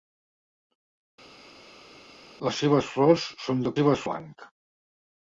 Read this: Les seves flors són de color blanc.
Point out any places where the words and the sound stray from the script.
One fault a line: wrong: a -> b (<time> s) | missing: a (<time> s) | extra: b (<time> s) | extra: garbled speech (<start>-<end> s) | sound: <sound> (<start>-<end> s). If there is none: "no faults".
wrong: color -> seves (3.8 s)